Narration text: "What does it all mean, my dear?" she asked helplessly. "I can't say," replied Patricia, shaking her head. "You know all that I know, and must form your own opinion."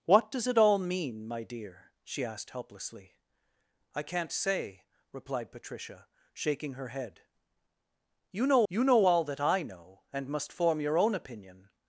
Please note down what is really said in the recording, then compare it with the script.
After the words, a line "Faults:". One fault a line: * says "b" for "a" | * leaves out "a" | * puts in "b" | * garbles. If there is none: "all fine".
"What does it all mean, my dear?" she asked helplessly. "I can't say," replied Patricia, shaking her head. "You know you know all that I know, and must form your own opinion."
Faults:
* puts in "you know"